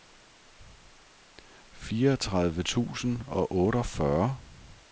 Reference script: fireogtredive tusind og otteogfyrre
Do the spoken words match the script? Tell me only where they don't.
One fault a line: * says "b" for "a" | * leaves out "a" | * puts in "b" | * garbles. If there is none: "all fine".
all fine